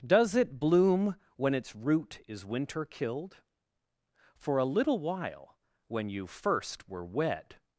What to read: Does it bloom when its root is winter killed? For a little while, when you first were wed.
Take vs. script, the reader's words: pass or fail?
pass